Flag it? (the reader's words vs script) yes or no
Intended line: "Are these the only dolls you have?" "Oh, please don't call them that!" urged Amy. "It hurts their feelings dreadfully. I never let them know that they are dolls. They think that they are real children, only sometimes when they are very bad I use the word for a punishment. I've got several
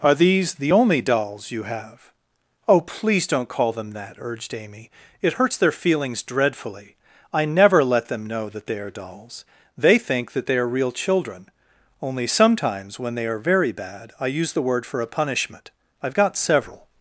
no